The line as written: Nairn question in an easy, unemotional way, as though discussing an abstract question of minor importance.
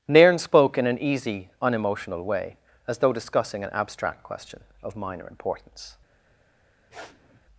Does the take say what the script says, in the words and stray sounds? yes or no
no